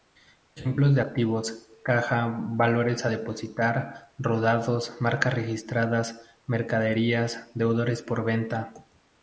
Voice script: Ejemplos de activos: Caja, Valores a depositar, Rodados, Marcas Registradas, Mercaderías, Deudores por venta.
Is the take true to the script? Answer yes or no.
yes